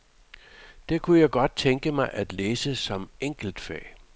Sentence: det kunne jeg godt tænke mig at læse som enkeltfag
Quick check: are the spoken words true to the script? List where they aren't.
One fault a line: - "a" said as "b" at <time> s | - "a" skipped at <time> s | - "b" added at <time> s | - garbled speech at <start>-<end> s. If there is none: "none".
none